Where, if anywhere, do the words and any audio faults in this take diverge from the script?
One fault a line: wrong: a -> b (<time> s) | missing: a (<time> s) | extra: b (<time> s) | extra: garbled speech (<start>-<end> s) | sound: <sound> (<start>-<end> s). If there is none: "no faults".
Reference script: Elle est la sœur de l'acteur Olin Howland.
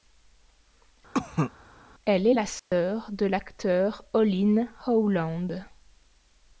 sound: cough (1.1-1.5 s)
sound: dropout (2.6-2.7 s)